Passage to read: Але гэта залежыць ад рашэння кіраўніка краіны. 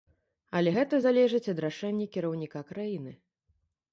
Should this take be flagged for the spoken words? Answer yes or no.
no